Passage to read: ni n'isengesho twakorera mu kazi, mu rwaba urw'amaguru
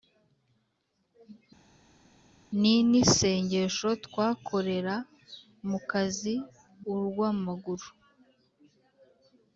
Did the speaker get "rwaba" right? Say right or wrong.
wrong